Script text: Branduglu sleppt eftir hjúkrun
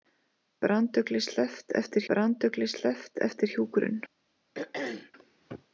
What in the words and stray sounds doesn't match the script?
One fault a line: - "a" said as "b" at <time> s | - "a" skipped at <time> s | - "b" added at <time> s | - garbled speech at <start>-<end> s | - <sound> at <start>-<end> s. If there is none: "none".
- "branduglu sleppt eftir" added at 2.1 s
- throat clearing at 4.5-5.1 s